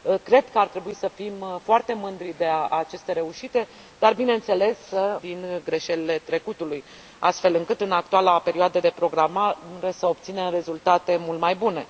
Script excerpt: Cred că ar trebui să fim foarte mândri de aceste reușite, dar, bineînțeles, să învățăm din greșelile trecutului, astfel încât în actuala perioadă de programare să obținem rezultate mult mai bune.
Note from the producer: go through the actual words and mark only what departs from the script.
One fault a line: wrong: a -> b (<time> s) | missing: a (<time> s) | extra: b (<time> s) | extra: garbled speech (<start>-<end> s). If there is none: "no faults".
missing: învățăm (5.2 s)